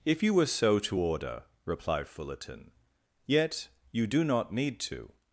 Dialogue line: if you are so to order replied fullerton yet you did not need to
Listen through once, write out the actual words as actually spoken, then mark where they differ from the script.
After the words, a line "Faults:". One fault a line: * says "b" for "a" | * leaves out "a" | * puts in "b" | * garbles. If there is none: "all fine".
if you were so to order replied fullerton yet you do not need to
Faults:
* says "were" for "are"
* says "do" for "did"